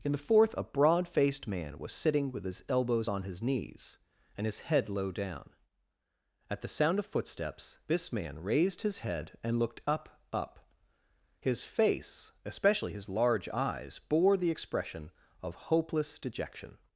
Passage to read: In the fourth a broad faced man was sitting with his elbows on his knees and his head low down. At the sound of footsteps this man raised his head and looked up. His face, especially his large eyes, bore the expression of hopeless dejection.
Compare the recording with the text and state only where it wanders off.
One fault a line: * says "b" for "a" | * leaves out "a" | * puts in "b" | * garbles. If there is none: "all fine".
* puts in "up"